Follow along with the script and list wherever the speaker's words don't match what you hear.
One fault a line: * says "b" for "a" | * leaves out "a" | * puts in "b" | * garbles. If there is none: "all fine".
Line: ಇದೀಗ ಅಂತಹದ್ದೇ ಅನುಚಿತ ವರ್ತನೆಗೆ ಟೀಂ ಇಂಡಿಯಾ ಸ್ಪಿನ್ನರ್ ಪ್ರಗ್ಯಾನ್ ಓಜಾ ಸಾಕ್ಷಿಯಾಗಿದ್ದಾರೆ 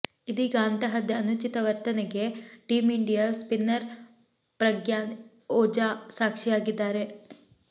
all fine